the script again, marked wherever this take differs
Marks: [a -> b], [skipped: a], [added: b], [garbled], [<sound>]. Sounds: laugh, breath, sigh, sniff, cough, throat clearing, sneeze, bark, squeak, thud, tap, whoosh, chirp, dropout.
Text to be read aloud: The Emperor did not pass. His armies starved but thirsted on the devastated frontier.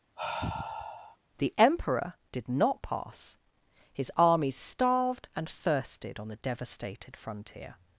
[sigh] The Emperor did not pass. His armies starved [but -> and] thirsted on the devastated frontier.